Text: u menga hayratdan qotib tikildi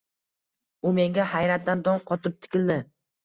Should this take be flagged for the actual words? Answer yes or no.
yes